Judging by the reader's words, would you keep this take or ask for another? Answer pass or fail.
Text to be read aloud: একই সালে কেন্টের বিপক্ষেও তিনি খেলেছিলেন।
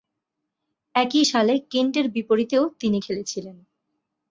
pass